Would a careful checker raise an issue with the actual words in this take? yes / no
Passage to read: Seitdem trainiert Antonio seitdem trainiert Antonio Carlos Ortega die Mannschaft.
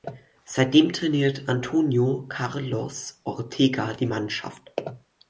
yes